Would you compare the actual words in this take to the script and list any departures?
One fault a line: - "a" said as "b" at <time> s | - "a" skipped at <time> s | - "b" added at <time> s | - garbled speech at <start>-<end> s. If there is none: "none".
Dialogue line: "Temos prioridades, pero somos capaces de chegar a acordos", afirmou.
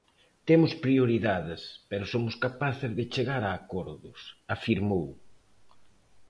none